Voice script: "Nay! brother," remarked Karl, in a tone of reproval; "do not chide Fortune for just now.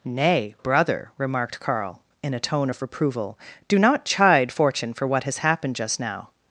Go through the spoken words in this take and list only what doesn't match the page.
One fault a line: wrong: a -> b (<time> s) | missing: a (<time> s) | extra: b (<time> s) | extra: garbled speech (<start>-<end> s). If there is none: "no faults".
extra: what has happened (5.1 s)